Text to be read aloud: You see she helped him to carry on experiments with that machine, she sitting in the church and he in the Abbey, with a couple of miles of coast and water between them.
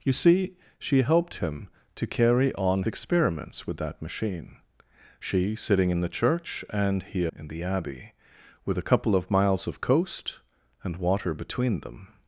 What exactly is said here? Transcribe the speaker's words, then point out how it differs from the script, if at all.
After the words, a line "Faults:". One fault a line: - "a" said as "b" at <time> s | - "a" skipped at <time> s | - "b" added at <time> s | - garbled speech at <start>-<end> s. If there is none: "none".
You see she helped him to carry on experiments with that machine, she sitting in the church and he in the Abbey, with a couple of miles of coast and water between them.
Faults:
none